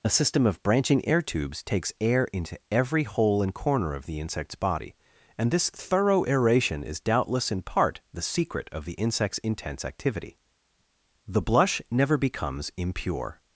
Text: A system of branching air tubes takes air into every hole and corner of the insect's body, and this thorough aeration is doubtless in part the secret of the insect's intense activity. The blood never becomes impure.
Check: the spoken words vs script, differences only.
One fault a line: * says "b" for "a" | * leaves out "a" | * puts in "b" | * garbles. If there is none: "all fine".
* says "blush" for "blood"